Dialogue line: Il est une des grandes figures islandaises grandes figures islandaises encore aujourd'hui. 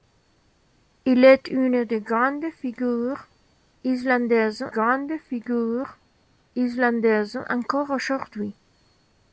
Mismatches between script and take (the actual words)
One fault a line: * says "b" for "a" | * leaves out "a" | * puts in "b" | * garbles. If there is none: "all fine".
all fine